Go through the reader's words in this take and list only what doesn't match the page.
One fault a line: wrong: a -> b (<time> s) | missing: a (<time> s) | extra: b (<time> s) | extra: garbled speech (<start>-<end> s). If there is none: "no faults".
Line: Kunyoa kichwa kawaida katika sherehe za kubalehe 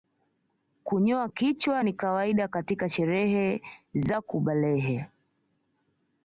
extra: ni (1.8 s)